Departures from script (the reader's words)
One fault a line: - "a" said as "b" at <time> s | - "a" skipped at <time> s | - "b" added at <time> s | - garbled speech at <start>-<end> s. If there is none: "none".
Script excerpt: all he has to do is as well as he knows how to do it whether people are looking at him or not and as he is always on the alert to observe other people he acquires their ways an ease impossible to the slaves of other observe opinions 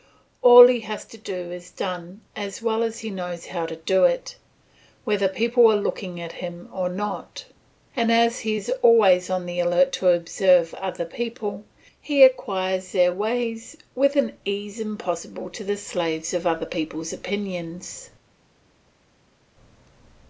- "done" added at 1.7 s
- "with" added at 14.0 s
- "observe" said as "people's" at 16.7 s